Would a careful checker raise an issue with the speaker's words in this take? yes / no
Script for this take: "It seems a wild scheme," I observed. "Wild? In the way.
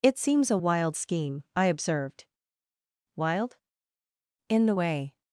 no